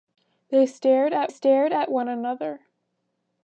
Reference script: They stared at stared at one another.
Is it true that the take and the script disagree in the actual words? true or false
false